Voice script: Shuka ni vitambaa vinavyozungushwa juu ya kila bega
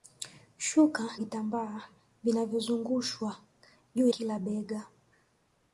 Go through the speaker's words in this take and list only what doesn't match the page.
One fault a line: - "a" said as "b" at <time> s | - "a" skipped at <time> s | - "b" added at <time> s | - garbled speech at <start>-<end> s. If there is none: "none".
- "ni" skipped at 1.1 s
- "ya" skipped at 4.1 s